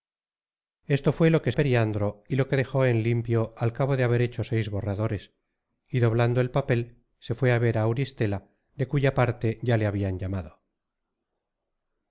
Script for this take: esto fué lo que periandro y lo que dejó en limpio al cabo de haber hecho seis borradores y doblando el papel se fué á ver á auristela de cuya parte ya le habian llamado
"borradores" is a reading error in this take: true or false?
false